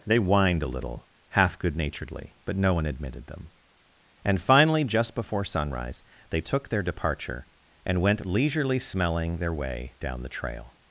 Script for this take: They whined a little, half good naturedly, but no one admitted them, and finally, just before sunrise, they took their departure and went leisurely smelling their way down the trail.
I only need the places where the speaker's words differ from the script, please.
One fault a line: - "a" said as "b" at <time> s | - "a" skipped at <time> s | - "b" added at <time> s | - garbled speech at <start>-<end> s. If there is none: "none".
none